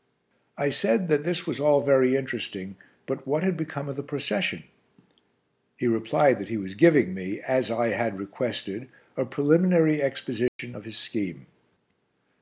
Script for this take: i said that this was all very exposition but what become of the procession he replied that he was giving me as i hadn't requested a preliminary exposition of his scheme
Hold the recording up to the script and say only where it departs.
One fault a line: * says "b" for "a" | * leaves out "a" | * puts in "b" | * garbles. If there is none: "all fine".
* says "interesting" for "exposition"
* puts in "had"
* says "had" for "hadn't"